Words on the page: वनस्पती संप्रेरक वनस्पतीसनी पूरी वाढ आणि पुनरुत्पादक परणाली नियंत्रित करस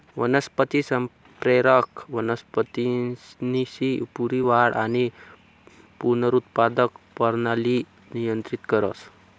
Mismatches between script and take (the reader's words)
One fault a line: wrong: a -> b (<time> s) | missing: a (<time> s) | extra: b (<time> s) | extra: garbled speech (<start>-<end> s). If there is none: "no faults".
no faults